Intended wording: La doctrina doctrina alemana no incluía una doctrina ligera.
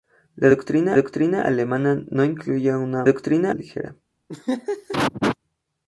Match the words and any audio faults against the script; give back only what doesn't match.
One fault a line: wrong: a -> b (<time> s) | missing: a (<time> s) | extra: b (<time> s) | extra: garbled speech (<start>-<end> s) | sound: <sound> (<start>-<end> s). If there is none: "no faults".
sound: laugh (4.3-5.4 s)